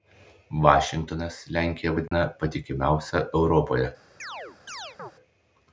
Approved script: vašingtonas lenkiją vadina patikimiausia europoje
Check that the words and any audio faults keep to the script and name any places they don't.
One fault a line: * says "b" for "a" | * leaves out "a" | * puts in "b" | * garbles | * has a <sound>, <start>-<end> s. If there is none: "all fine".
* has a dropout, 2.1-2.1 s
* has a chirp, 4.2-5.1 s